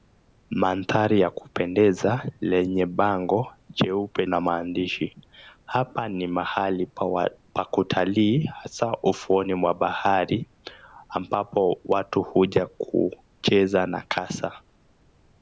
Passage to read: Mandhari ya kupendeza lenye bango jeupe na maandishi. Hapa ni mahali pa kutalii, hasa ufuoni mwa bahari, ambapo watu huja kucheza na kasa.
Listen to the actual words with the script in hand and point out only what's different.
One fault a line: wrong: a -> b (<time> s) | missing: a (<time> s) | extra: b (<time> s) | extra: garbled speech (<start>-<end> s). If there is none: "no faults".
no faults